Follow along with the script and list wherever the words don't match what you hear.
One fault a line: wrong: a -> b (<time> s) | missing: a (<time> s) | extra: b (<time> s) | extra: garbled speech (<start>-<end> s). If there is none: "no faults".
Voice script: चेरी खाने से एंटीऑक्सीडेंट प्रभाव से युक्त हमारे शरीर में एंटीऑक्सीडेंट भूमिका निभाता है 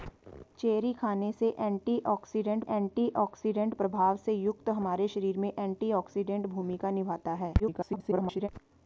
extra: एंटीऑक्सीडेंट (2.7 s)
extra: garbled speech (7.6-8.5 s)